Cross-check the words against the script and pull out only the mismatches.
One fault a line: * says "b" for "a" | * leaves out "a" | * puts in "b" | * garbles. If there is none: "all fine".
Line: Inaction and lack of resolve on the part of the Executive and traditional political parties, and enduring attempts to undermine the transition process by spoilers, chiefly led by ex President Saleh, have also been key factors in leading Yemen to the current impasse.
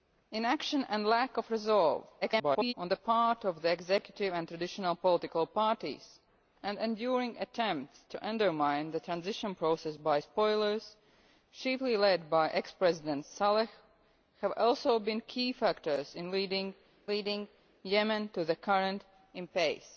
* garbles
* puts in "leading"